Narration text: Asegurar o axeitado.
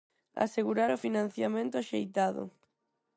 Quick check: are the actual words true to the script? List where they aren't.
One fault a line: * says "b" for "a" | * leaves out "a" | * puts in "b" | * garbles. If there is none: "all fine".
* puts in "financiamento"